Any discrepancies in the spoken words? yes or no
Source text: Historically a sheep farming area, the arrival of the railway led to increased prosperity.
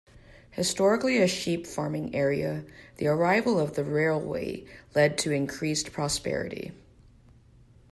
no